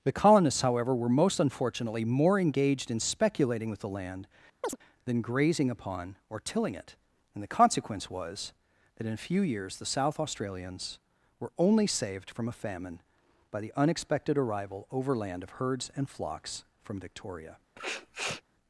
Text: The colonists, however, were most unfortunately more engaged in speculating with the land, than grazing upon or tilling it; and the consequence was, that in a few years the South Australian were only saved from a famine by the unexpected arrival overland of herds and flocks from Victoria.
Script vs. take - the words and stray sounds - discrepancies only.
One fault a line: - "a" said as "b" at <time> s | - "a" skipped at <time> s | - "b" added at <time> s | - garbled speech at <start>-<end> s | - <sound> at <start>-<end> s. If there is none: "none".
- chirp at 4.6-4.8 s
- "Australian" said as "Australians" at 10.2 s
- sniff at 17.8-18.4 s